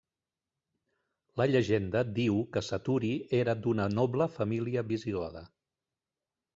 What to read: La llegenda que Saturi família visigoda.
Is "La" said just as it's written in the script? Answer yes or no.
yes